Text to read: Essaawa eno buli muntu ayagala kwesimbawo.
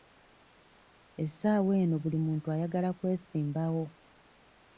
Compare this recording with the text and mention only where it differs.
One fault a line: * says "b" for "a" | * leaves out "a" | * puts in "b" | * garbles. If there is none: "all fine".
all fine